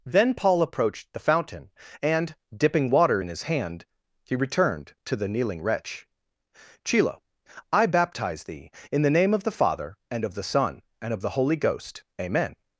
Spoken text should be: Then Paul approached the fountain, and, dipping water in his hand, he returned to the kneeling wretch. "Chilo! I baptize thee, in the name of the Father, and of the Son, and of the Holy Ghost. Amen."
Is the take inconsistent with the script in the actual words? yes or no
no